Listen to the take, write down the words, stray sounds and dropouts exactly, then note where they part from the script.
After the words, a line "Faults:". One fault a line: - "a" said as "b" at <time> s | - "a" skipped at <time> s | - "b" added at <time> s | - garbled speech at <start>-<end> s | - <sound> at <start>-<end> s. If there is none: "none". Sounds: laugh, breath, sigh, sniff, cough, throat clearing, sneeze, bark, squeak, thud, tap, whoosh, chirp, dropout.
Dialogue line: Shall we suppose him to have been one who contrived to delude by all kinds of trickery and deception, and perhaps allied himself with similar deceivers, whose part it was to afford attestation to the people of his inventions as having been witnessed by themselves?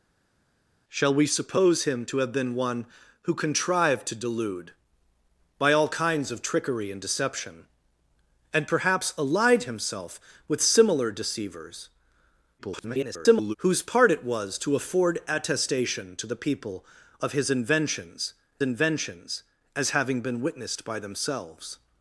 Shall we suppose him to have been one who contrived to delude by all kinds of trickery and deception, and perhaps allied himself with similar deceivers, [garbled] whose part it was to afford attestation to the people of his inventions inventions as having been witnessed by themselves?
Faults:
- garbled speech at 12.6-13.6 s
- "inventions" added at 18.6 s